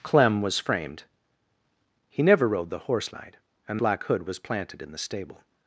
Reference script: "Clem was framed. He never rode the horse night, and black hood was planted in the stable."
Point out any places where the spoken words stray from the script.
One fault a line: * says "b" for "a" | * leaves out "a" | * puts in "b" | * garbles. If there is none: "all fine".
all fine